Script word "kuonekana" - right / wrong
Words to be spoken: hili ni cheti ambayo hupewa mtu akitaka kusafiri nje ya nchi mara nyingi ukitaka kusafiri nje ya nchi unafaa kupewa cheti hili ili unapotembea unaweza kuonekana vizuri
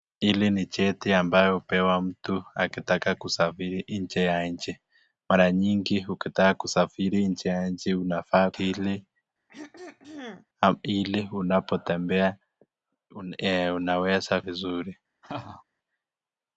wrong